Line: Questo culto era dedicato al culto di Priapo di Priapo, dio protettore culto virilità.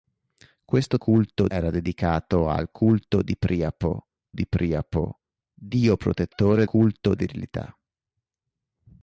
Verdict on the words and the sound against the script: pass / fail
pass